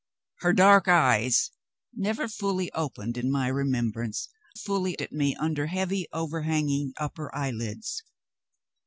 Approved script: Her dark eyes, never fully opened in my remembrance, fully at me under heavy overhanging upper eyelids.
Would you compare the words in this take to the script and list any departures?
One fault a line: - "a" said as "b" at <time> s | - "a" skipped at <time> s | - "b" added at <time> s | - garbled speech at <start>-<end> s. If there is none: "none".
none